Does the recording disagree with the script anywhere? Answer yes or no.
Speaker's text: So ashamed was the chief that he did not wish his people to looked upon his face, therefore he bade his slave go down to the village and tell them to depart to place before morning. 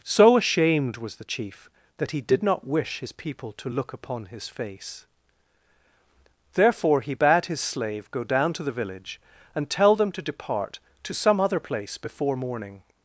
yes